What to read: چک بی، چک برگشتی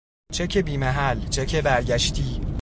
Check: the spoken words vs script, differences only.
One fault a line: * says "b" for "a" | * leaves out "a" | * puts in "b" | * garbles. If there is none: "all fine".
* puts in "محل"